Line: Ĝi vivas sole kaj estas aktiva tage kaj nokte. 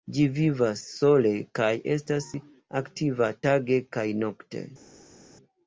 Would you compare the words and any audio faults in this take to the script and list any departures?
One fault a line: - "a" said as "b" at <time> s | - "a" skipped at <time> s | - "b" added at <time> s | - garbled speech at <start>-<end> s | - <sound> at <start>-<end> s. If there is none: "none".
none